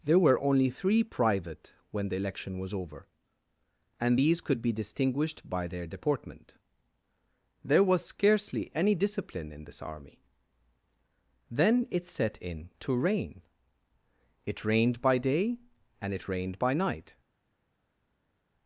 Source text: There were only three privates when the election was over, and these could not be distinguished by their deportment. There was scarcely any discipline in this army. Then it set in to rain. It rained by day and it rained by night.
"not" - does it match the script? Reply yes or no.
no